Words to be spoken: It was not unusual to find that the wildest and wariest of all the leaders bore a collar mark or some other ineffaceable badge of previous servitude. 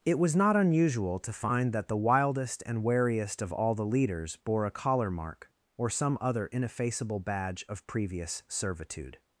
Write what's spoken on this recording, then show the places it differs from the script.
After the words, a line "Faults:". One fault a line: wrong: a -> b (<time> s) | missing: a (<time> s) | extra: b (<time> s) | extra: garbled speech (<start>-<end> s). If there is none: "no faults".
It was not unusual to find that the wildest and wariest of all the leaders bore a collar mark or some other ineffaceable badge of previous servitude.
Faults:
no faults